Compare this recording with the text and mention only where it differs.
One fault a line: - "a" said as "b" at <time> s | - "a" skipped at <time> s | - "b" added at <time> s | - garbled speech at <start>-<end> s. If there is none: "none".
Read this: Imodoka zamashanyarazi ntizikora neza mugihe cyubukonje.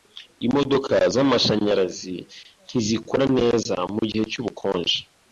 none